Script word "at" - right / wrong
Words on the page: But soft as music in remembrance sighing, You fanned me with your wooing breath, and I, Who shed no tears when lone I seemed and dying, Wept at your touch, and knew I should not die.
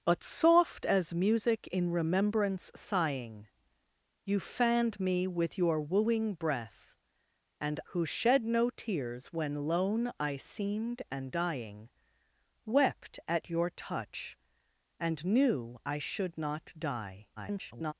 right